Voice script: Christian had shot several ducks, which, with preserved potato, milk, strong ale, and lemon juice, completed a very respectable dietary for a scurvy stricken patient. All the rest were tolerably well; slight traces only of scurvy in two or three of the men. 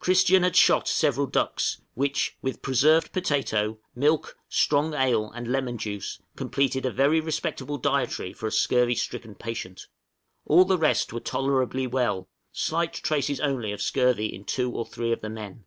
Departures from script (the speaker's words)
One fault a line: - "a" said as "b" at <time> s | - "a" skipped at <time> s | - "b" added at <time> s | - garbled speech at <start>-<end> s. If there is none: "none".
none